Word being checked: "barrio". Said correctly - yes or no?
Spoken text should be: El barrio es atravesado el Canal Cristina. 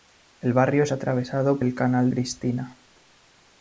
yes